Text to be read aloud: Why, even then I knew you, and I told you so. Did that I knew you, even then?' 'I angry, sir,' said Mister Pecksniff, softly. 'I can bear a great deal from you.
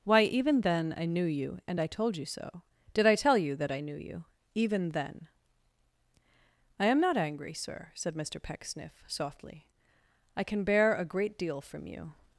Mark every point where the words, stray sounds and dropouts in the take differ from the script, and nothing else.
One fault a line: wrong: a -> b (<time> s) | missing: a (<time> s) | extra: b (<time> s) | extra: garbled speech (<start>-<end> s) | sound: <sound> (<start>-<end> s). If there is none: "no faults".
extra: I tell you (3.1 s)
extra: am not (6.9 s)